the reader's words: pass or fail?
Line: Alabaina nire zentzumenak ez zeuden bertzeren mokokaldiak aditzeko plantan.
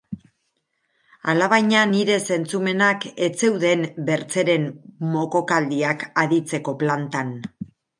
pass